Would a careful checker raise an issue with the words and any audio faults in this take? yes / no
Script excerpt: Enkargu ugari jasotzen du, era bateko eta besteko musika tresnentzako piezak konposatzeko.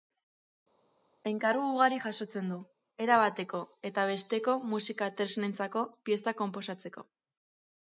no